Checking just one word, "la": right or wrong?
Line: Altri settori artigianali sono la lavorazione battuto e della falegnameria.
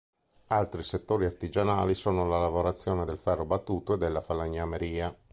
right